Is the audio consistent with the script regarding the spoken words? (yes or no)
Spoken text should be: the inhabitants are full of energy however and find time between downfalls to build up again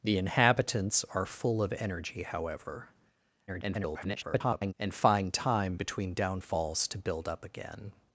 no